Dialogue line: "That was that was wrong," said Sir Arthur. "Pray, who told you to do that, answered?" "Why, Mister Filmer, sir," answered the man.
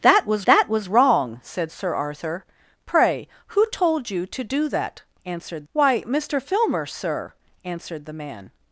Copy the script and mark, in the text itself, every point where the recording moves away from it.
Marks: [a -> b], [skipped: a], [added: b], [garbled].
"That was that was wrong," said Sir Arthur. "Pray, who told you to do that, answered?" "Why, Mister Filmer, sir," answered the man.